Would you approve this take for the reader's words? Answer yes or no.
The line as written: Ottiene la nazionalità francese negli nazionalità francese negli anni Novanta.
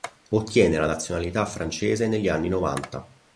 no